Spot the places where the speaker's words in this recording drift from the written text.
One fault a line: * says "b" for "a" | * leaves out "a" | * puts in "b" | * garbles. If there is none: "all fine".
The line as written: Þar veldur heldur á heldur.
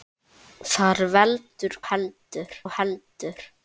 all fine